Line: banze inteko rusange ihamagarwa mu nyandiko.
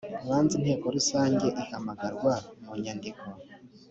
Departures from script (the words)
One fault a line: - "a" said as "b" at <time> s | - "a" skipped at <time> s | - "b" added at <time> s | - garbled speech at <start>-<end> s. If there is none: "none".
none